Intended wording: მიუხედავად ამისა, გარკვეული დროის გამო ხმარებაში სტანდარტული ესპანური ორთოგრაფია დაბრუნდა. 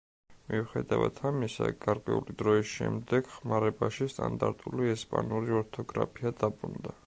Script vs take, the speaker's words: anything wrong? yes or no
yes